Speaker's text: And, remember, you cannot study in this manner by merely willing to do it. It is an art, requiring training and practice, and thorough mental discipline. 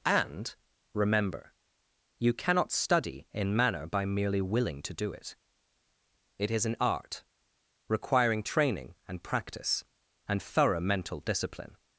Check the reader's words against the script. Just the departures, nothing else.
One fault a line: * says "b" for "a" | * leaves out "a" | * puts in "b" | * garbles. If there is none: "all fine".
* leaves out "this"